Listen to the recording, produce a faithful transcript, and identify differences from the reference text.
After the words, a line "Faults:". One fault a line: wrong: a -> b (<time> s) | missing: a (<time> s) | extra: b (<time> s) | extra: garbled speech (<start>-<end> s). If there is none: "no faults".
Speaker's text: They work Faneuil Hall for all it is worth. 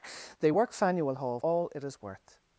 They work Faneuil Hall all it is worth.
Faults:
missing: for (1.4 s)